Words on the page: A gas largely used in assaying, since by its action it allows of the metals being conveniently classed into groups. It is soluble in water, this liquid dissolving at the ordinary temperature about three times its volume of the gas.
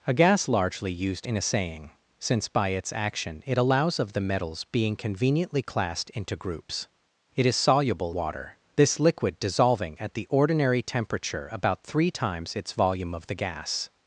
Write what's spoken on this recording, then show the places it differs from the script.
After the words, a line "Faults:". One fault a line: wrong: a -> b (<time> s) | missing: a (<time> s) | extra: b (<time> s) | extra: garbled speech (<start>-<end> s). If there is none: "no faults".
A gas largely used in assaying, since by its action it allows of the metals being conveniently classed into groups. It is soluble water, this liquid dissolving at the ordinary temperature about three times its volume of the gas.
Faults:
missing: in (8.1 s)